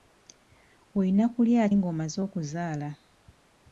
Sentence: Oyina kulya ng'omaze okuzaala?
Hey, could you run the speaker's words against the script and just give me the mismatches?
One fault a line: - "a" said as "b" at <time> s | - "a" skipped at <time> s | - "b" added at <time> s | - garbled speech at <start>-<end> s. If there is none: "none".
none